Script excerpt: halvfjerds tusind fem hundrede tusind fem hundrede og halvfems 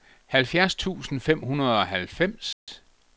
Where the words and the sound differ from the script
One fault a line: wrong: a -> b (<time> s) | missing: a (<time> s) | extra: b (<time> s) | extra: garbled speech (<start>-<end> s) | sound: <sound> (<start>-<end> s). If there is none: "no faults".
missing: tusind fem hundrede (1.8 s)
sound: dropout (2.5-2.7 s)